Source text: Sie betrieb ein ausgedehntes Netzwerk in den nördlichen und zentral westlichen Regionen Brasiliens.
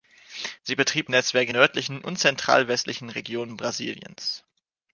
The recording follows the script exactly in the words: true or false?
false